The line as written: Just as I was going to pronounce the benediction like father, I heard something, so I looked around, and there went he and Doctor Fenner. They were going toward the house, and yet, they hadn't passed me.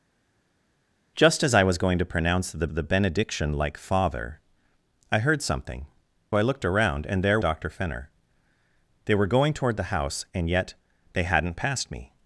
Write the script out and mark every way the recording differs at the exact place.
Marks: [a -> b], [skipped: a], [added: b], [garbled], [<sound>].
Just as I was going to pronounce the [added: the] benediction like father, I heard something, [skipped: so] I looked around, and there [skipped: went he and] Doctor Fenner. They were going toward the house, and yet, they hadn't passed me.